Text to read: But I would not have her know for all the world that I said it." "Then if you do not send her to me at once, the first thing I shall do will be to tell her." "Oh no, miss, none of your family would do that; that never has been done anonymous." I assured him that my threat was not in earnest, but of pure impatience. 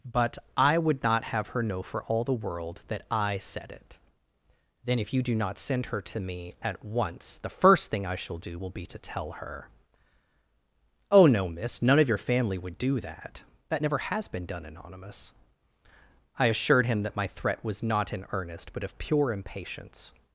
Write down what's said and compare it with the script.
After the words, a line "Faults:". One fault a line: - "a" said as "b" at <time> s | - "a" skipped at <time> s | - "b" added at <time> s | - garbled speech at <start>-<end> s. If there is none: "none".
But I would not have her know for all the world that I said it." "Then if you do not send her to me at once, the first thing I shall do will be to tell her." "Oh no, miss, none of your family would do that; that never has been done anonymous." I assured him that my threat was not in earnest, but of pure impatience.
Faults:
none